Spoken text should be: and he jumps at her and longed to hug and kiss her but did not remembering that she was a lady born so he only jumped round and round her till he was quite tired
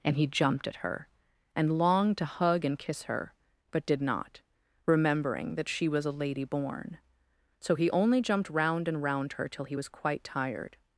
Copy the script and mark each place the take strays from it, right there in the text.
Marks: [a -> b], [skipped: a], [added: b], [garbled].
and he [jumps -> jumped] at her and longed to hug and kiss her but did not remembering that she was a lady born so he only jumped round and round her till he was quite tired